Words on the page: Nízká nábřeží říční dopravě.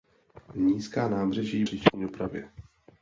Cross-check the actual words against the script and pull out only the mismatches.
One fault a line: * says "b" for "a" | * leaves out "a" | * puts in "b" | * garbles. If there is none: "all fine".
all fine